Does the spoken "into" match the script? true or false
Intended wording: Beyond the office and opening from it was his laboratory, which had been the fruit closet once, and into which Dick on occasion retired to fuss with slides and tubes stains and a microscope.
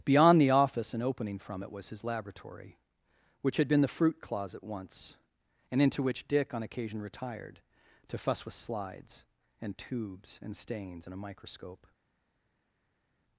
true